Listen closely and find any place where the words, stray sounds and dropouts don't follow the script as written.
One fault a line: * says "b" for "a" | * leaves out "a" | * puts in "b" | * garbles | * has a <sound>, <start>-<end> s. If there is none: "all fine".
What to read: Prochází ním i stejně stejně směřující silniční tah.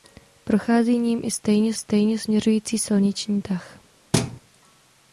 * has a thud, 4.1-4.4 s